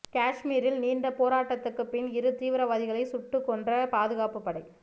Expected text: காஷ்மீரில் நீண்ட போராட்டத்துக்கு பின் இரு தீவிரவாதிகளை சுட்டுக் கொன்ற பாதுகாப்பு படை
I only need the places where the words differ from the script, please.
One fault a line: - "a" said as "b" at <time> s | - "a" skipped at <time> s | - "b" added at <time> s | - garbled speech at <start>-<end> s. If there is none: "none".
none